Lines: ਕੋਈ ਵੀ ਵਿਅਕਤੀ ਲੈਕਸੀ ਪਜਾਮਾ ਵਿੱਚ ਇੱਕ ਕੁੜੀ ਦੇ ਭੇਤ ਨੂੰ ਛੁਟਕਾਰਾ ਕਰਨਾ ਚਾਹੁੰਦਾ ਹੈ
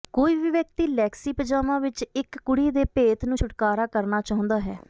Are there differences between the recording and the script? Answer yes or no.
no